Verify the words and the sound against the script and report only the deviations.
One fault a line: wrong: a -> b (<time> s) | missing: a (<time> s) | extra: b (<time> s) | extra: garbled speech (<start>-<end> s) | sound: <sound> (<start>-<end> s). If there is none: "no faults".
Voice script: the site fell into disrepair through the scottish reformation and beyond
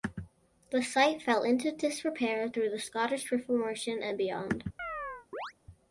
sound: chirp (4.8-5.5 s)